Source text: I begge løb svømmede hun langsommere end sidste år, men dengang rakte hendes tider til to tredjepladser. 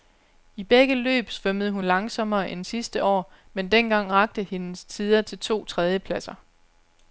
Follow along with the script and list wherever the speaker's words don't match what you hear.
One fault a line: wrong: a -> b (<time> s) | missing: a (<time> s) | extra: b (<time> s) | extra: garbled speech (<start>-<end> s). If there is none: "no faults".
no faults